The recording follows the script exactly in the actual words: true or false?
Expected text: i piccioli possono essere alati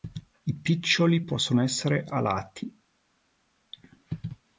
true